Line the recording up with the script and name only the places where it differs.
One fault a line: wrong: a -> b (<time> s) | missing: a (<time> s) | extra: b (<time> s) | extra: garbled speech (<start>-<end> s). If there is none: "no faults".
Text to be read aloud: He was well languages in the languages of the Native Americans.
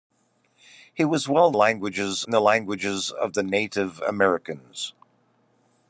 no faults